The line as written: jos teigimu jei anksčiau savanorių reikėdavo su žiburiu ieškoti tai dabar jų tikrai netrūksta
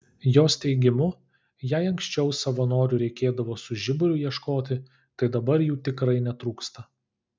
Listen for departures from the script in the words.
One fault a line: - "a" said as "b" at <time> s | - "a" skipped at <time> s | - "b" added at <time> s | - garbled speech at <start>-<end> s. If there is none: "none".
none